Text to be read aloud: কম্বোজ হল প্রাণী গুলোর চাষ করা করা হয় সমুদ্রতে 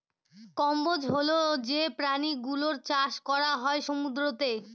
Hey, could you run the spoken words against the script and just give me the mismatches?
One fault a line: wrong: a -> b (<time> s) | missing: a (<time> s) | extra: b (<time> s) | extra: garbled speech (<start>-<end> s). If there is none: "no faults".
extra: যে (1.7 s)
missing: করা (3.5 s)